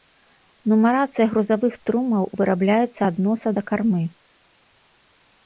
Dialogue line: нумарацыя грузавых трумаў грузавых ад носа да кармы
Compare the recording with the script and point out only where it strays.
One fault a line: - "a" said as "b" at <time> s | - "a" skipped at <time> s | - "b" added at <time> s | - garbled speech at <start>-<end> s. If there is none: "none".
- "грузавых" said as "вырабляецца" at 2.4 s